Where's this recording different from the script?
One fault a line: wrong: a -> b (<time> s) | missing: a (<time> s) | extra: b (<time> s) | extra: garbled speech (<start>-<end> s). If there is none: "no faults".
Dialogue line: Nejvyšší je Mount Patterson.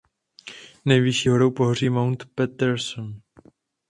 extra: horou pohoří (1.3 s)